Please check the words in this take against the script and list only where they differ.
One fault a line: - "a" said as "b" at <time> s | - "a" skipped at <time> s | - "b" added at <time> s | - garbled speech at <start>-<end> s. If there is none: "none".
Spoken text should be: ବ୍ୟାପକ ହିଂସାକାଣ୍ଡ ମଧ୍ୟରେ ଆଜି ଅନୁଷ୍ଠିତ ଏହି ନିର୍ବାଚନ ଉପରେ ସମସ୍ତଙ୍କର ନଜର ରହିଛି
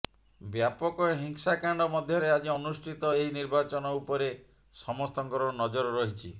none